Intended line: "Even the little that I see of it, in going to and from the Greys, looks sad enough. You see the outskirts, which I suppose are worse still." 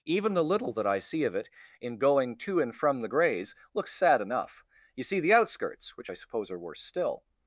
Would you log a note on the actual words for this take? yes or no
no